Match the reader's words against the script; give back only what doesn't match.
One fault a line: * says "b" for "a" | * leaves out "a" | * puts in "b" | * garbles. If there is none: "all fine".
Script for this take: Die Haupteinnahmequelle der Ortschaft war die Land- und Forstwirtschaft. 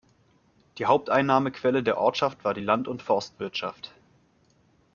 all fine